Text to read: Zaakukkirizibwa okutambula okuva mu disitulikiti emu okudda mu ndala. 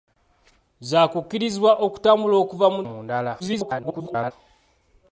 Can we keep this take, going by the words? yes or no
no